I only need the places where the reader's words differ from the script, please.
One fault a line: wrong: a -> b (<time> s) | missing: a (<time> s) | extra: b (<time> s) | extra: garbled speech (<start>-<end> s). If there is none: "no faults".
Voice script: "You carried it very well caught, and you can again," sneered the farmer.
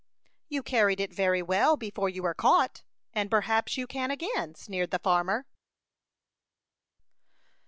extra: before you were (1.8 s)
extra: perhaps (3.3 s)